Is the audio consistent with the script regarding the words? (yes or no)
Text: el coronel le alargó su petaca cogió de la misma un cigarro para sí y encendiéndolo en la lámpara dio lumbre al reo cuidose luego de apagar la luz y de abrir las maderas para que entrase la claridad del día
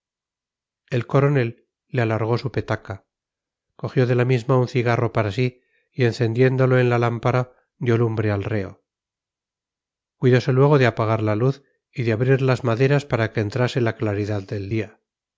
yes